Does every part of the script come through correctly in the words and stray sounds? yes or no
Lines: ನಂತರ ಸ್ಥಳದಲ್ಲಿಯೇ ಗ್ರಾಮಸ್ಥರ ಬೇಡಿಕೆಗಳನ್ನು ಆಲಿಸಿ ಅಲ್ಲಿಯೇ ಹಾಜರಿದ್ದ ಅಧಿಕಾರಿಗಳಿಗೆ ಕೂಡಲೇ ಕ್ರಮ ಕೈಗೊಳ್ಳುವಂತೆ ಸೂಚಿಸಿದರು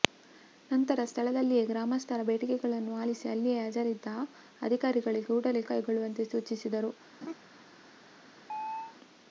no